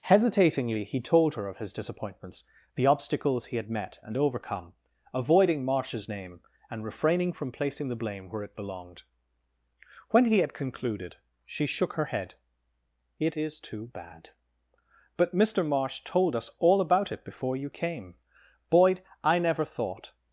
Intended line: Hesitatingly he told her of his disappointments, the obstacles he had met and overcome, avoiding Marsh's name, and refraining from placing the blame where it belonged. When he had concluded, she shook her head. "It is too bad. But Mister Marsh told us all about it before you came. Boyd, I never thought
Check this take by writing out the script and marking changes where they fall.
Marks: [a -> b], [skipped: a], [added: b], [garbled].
Hesitatingly he told her of his disappointments, the obstacles he had met and overcome, avoiding Marsh's name, and refraining from placing the blame where it belonged. When he had concluded, she shook her head. "It is too bad. But Mister Marsh told us all about it before you came. Boyd, I never thought